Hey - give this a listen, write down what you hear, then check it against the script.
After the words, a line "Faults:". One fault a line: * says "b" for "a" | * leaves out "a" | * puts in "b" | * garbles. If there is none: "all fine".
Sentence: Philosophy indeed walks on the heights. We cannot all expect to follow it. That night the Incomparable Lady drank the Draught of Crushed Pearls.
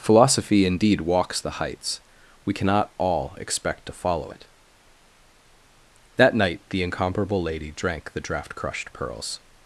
Philosophy indeed walks the heights. We cannot all expect to follow it. That night the Incomparable Lady drank the Draught Crushed Pearls.
Faults:
* leaves out "on"
* leaves out "of"